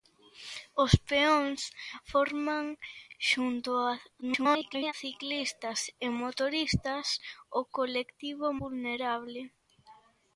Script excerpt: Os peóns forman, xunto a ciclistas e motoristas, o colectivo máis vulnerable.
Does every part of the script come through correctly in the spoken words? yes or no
no